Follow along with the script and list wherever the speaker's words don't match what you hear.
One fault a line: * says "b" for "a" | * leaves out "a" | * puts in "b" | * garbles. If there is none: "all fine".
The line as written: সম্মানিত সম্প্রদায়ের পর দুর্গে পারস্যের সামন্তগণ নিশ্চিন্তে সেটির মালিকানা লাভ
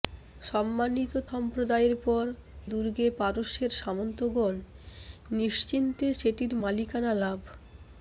all fine